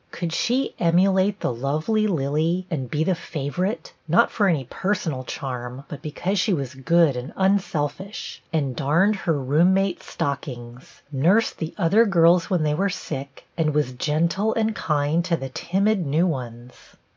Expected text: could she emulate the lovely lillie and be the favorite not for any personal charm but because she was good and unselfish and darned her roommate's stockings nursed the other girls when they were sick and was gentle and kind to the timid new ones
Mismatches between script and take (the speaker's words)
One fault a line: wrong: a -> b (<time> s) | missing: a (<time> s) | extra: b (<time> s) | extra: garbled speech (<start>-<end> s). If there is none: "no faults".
no faults